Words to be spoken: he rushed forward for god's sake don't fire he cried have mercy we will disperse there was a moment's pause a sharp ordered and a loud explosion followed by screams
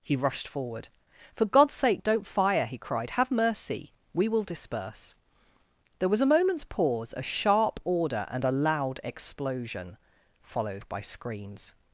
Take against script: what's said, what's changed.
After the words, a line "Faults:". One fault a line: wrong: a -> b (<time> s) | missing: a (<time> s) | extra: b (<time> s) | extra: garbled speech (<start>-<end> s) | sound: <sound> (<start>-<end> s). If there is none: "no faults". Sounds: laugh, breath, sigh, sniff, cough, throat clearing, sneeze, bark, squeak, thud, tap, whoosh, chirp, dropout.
he rushed forward for god's sake don't fire he cried have mercy we will disperse there was a moment's pause a sharp order and a loud explosion followed by screams
Faults:
wrong: ordered -> order (7.8 s)